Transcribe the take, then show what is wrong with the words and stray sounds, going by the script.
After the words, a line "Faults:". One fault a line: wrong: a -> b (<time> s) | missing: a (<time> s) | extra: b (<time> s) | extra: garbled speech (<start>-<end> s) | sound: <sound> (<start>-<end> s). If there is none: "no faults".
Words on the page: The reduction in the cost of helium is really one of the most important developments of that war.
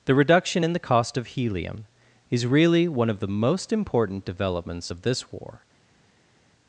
The reduction in the cost of helium is really one of the most important developments of this war.
Faults:
wrong: that -> this (5.0 s)